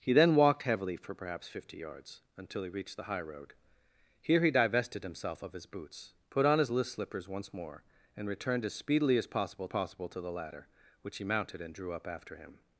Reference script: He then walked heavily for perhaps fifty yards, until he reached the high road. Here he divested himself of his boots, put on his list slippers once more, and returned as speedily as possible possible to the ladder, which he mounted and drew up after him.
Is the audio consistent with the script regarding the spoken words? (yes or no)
yes